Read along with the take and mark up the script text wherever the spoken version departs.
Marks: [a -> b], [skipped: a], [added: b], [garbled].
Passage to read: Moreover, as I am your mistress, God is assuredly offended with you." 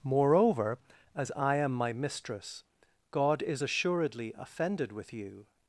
Moreover, as I am [your -> my] mistress, God is assuredly offended with you."